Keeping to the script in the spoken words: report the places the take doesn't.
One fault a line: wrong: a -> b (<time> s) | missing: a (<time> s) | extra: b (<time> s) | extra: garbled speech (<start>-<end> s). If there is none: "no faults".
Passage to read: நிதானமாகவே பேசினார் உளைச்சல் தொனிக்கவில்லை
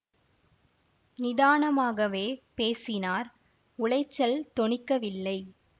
no faults